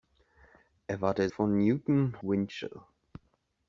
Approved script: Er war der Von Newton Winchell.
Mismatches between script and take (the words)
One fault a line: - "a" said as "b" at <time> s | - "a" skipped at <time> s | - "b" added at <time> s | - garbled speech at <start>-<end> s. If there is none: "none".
none